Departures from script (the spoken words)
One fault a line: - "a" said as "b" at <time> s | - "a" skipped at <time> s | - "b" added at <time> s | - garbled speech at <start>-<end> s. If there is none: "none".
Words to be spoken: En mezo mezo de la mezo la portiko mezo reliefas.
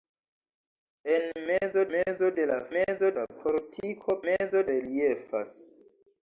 none